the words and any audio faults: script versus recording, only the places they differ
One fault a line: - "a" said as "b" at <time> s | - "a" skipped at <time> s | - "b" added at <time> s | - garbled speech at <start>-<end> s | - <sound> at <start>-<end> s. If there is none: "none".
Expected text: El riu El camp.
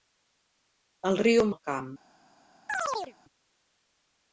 - chirp at 2.7-3.1 s